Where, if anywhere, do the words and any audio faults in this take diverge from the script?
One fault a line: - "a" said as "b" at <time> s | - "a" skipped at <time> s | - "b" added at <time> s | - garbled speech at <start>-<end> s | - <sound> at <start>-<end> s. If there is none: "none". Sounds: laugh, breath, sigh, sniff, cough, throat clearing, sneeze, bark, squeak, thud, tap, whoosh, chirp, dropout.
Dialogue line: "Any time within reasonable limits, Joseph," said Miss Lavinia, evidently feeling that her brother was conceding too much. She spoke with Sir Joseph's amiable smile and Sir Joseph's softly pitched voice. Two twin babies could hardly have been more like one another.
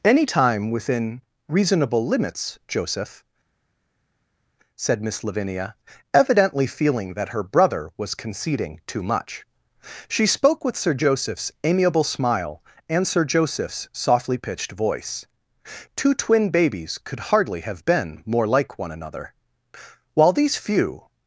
- "While these few" added at 20.1 s